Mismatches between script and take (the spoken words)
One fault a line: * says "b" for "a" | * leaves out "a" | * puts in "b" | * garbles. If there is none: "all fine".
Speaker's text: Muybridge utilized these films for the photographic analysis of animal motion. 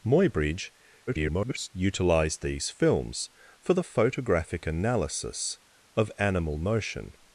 * garbles